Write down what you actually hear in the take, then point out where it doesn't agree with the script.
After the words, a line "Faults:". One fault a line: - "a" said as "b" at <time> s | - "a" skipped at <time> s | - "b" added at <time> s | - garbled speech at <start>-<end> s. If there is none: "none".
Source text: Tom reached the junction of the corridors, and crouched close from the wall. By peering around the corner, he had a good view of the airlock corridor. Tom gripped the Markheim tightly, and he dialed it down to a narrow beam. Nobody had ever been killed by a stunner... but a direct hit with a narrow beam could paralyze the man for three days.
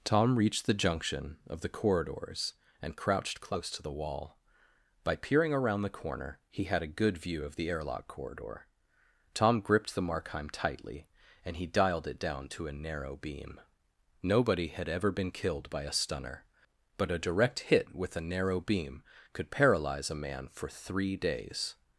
Tom reached the junction of the corridors, and crouched close to the wall. By peering around the corner, he had a good view of the airlock corridor. Tom gripped the Markheim tightly, and he dialed it down to a narrow beam. Nobody had ever been killed by a stunner... but a direct hit with a narrow beam could paralyze a man for three days.
Faults:
- "from" said as "to" at 3.7 s
- "the" said as "a" at 20.1 s